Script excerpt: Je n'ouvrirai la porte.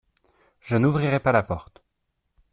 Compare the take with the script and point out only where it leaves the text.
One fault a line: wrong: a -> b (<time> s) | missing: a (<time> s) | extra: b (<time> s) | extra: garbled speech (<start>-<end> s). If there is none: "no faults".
extra: pas (1.2 s)